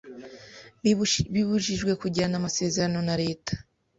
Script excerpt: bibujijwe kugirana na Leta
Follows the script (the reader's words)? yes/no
no